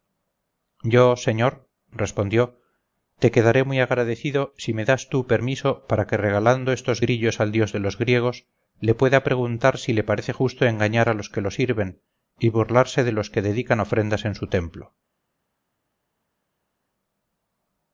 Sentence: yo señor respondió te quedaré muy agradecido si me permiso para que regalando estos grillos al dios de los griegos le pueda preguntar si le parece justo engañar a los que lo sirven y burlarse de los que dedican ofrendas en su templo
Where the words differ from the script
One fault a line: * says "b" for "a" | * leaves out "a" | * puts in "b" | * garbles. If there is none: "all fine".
* puts in "das tú"